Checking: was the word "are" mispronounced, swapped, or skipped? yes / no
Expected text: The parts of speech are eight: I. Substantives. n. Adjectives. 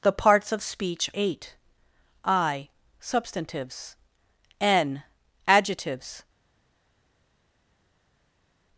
yes